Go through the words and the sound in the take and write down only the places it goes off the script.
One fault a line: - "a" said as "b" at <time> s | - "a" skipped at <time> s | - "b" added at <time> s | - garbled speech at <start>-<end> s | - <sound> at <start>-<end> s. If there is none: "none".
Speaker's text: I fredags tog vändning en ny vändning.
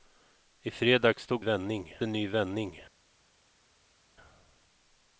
none